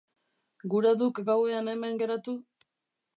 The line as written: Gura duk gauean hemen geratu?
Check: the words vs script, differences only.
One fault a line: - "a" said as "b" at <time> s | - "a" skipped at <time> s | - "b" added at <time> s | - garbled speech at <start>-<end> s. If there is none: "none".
none